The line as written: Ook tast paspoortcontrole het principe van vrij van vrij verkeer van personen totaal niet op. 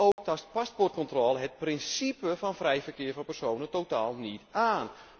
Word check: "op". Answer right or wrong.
wrong